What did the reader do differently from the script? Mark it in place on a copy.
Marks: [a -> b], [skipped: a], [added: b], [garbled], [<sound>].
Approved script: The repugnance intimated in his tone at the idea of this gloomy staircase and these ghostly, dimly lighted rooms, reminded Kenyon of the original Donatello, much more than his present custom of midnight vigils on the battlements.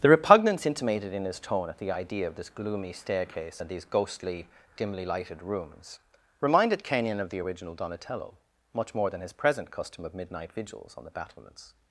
The repugnance intimated in his tone at the idea of this gloomy staircase and these ghostly, dimly lighted rooms, reminded Kenyon of the original Donatello, much more than his present custom of midnight vigils on the battlements.